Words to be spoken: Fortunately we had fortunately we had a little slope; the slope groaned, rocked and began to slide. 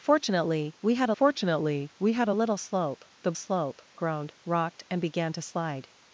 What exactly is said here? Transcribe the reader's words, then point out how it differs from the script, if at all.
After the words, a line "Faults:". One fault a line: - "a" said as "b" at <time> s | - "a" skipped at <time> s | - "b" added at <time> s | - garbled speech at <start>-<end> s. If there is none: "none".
Fortunately we had fortunately we had a little slope; the slope groaned, rocked and began to slide.
Faults:
none